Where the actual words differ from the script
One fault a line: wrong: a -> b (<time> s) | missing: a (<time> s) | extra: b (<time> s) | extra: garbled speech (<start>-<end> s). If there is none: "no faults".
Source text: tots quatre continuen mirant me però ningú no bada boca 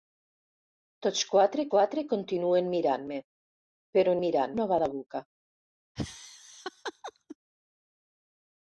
extra: quatre (1.7 s)
wrong: ningú -> mirant (4.2 s)